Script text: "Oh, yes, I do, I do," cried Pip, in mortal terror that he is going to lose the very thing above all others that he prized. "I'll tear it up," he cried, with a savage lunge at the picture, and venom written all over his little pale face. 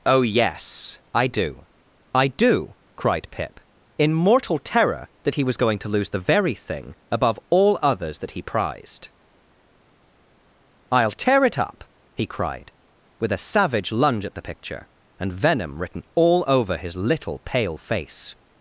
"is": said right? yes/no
no